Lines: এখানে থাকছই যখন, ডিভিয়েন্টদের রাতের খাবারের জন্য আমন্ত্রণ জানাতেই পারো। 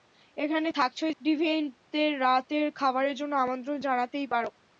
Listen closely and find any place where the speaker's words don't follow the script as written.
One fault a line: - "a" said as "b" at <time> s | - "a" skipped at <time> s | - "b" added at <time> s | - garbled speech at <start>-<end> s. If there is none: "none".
- "যখন" skipped at 1.1 s